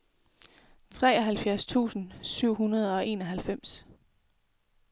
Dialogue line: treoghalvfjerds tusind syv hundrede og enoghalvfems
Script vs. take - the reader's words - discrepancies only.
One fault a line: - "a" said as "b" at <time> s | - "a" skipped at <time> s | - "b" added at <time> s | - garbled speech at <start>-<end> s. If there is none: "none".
none